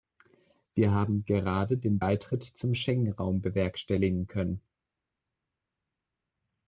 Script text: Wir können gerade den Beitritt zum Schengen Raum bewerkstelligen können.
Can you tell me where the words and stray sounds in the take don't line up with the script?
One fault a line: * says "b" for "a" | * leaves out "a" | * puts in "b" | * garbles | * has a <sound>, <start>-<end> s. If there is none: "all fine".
* says "haben" for "können"